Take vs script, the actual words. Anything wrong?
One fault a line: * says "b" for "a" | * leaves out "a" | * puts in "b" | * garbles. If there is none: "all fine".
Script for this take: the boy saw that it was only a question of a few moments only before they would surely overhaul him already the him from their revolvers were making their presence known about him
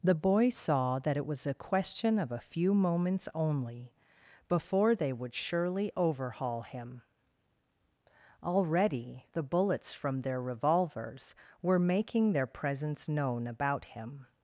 * leaves out "only"
* says "bullets" for "him"